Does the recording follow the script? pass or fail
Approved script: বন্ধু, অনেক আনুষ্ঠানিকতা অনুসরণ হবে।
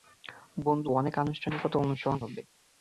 pass